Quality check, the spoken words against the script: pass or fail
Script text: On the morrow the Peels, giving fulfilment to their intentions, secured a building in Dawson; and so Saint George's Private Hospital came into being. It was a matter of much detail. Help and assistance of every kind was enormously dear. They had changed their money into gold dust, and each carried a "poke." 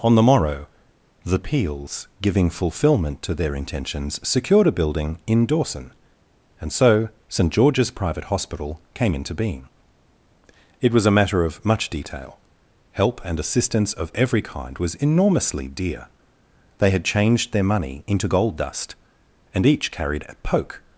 pass